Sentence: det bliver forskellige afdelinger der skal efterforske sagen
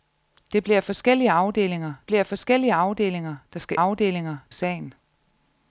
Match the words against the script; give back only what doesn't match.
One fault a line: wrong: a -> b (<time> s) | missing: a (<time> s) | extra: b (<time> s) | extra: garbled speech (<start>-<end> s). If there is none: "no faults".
extra: bliver forskellige afdelinger (2.1 s)
wrong: efterforske -> afdelinger (3.7 s)